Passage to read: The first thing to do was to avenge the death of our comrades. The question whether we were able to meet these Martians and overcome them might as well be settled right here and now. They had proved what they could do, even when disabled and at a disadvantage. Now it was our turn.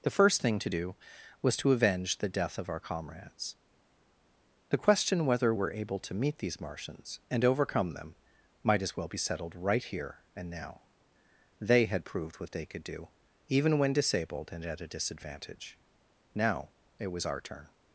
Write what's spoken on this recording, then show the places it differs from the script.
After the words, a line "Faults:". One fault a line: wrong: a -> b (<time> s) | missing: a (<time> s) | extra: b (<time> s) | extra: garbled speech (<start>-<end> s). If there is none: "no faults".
The first thing to do was to avenge the death of our comrades. The question whether were able to meet these Martians and overcome them might as well be settled right here and now. They had proved what they could do, even when disabled and at a disadvantage. Now it was our turn.
Faults:
missing: we (5.5 s)